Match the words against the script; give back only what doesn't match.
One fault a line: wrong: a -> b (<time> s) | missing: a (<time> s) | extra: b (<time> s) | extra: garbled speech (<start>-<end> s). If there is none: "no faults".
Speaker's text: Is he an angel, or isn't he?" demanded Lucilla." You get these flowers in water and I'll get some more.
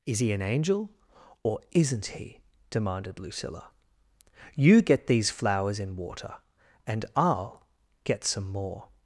no faults